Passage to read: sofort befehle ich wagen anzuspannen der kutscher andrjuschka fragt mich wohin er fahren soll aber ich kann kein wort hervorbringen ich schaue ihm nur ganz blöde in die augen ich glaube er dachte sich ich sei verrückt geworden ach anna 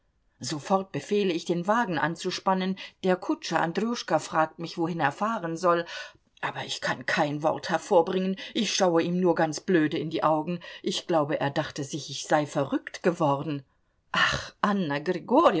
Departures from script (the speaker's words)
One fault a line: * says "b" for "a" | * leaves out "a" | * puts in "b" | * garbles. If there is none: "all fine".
* puts in "den"